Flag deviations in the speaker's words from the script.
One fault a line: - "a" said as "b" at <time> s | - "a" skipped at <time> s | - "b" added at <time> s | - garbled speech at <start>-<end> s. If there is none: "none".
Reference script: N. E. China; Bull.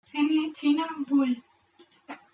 - "E" skipped at 0.6 s